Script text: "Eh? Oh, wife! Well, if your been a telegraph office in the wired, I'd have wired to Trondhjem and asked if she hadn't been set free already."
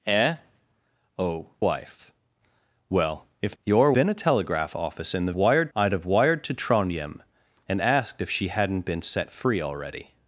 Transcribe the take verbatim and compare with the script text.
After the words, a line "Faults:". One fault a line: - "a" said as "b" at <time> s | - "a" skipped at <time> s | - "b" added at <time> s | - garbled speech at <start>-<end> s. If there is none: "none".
"Eh? Oh, wife! Well, if your been a telegraph office in the wired, I'd have wired to Trondhjem and asked if she hadn't been set free already."
Faults:
none